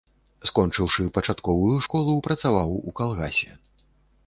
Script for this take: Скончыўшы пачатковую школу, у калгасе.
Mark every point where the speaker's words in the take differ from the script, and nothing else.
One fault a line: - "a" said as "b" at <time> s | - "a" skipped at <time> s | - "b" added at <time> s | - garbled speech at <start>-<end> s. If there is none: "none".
- "працаваў" added at 2.3 s